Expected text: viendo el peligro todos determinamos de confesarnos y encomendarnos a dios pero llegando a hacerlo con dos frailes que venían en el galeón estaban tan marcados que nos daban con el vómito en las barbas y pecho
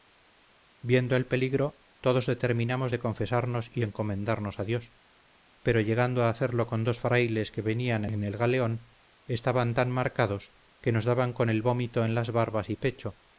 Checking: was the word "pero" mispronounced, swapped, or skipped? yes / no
no